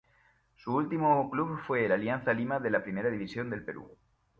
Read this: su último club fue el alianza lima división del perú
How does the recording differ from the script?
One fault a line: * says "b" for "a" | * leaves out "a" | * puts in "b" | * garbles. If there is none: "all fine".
* puts in "de la primera"